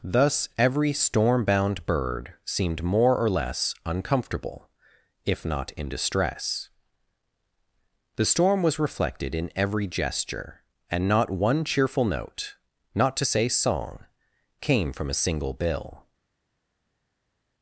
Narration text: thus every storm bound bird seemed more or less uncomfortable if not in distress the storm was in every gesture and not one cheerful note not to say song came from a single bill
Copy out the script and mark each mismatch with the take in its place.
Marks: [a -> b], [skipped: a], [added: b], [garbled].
thus every storm bound bird seemed more or less uncomfortable if not in distress the storm was [added: reflected] in every gesture and not one cheerful note not to say song came from a single bill